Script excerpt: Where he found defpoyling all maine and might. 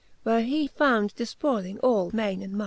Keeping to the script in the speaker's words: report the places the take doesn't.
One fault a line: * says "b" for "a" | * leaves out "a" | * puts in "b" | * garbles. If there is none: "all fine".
all fine